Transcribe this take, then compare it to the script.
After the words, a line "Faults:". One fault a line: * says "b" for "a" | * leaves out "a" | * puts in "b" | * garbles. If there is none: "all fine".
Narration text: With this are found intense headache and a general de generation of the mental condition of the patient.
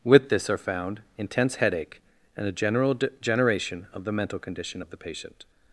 With this are found intense headache and a general de generation of the mental condition of the patient.
Faults:
all fine